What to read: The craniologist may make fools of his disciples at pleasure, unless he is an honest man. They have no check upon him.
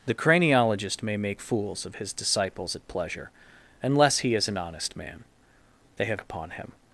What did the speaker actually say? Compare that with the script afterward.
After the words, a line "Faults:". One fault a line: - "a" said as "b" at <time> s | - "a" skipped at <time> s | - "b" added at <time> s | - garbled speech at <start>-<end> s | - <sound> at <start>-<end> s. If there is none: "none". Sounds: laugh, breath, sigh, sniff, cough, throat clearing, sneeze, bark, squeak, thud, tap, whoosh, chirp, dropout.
The craniologist may make fools of his disciples at pleasure, unless he is an honest man. They have upon him.
Faults:
- "no check" skipped at 6.2 s